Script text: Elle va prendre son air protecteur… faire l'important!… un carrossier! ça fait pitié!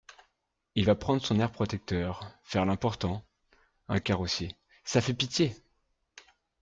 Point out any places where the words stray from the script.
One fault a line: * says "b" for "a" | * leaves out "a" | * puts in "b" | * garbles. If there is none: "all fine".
* says "Il" for "Elle"